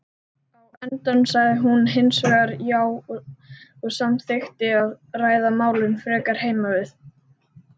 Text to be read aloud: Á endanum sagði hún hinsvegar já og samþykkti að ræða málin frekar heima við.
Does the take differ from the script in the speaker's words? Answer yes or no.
no